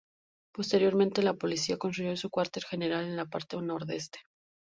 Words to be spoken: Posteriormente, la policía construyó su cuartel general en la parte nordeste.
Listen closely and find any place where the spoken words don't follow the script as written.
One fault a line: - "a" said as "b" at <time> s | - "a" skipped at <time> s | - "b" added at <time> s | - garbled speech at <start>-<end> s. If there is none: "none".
none